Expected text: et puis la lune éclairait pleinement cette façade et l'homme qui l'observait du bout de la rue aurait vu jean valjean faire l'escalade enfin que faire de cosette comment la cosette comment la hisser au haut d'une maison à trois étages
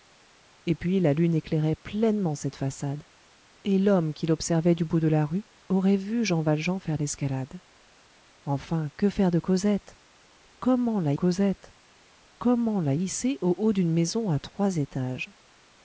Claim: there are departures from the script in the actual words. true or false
false